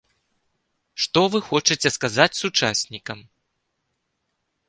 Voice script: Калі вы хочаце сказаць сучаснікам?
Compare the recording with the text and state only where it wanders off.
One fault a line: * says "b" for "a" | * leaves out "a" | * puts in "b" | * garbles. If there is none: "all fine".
* says "Што" for "Калі"